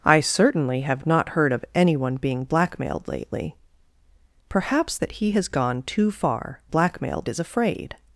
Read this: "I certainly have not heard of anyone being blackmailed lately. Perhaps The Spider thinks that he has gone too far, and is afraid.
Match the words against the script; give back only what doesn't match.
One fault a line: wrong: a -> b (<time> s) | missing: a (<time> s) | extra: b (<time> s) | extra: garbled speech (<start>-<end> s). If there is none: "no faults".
missing: The Spider thinks (5.0 s)
wrong: and -> blackmailed (6.7 s)